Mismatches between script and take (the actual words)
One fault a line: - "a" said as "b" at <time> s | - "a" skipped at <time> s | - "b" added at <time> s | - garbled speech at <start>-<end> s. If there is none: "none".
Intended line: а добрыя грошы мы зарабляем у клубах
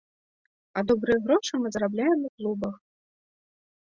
none